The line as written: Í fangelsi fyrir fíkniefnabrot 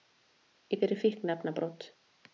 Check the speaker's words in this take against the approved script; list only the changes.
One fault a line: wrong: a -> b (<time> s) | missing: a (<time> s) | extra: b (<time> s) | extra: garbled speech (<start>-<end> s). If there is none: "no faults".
missing: fangelsi (0.8 s)